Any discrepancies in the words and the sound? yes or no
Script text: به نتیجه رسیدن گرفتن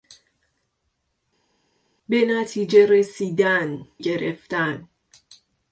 no